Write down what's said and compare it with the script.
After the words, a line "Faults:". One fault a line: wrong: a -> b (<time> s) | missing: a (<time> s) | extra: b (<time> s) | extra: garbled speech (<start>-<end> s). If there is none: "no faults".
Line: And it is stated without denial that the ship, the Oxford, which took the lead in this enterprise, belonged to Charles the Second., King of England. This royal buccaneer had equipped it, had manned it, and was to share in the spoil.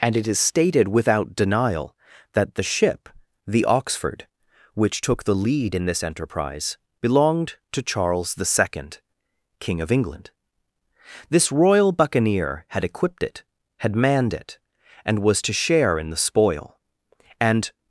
And it is stated without denial that the ship, the Oxford, which took the lead in this enterprise, belonged to Charles the Second., King of England. This royal buccaneer had equipped it, had manned it, and was to share in the spoil. And
Faults:
extra: And (17.4 s)